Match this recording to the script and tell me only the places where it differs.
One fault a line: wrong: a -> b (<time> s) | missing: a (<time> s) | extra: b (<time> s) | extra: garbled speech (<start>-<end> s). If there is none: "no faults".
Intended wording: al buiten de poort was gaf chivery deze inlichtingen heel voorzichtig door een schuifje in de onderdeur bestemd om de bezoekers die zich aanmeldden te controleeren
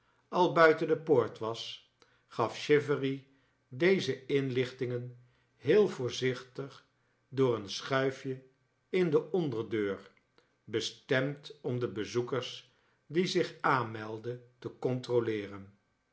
no faults